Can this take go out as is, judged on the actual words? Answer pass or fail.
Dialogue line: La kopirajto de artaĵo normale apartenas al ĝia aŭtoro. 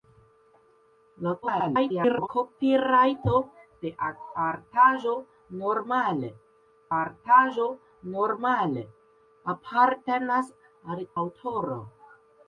fail